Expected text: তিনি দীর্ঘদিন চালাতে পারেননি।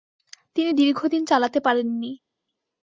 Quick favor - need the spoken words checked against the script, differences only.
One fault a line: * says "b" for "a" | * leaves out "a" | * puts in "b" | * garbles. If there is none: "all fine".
all fine